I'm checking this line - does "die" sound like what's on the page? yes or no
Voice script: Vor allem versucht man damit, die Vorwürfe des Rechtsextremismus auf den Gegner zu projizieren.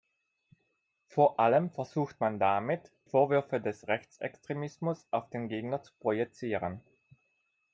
no